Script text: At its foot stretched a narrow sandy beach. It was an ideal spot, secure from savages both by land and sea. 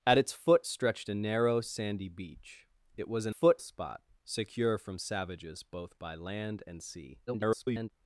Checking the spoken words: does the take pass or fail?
fail